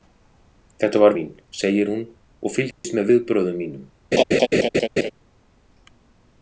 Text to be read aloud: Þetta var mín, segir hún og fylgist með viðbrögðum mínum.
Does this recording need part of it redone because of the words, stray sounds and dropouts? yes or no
yes